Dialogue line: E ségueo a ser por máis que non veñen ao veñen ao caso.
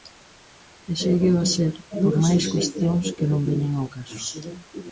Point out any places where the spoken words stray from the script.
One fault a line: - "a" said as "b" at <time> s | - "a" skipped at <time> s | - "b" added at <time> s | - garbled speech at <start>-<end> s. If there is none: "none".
- "cuestións" added at 2.5 s
- "veñen ao" skipped at 3.9 s